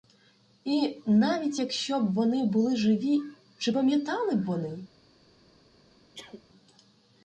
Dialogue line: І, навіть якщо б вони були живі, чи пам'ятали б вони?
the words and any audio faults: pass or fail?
fail